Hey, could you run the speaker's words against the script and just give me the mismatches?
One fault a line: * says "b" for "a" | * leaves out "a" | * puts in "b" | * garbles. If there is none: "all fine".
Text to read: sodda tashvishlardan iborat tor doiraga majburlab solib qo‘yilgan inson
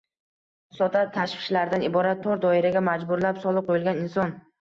all fine